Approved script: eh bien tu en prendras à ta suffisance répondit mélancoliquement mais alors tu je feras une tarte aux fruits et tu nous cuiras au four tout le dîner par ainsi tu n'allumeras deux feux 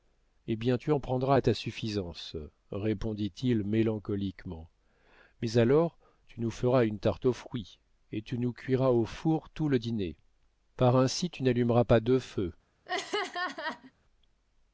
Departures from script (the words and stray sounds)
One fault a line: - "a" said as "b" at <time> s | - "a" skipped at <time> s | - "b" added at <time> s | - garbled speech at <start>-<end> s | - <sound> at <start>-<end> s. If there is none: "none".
- "il" added at 3.4 s
- "je" said as "nous" at 6.4 s
- "pas" added at 11.8 s
- laugh at 12.9-13.9 s